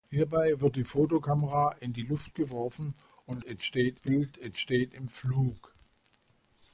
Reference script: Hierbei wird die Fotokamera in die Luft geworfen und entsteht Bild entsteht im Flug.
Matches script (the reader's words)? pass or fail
pass